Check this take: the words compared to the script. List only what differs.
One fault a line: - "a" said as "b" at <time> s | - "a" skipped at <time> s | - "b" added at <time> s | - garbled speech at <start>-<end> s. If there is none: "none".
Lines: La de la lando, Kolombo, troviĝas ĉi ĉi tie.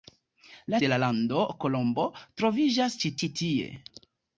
none